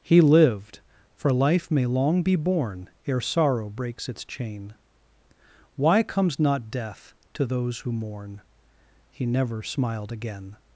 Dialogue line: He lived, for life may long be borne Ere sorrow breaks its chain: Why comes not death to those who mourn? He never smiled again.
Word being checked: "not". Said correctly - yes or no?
yes